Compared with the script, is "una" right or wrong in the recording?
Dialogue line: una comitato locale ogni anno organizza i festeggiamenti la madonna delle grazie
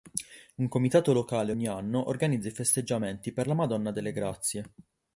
wrong